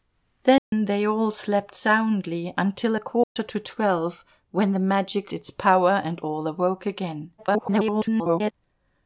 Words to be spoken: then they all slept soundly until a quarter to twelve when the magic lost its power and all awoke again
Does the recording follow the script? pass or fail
fail